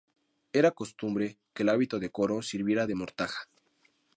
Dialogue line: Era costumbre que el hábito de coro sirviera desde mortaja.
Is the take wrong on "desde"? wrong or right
wrong